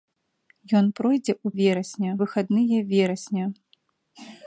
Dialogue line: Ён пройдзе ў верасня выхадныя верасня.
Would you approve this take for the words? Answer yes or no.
yes